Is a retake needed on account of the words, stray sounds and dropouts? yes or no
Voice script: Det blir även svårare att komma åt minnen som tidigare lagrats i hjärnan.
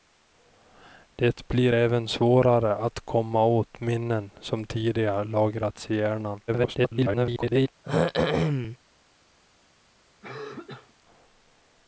yes